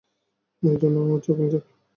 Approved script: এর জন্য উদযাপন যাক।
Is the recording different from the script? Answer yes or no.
no